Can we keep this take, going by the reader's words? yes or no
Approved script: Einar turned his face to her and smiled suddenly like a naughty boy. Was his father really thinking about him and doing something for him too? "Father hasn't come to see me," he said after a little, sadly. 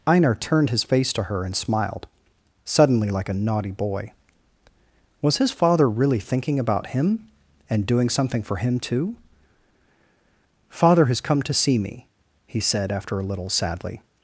no